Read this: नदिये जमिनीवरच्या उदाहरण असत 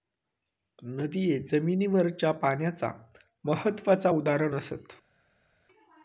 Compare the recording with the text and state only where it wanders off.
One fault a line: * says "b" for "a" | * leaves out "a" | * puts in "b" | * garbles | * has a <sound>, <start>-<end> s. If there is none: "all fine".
* puts in "पाण्याचा महत्त्वाचा"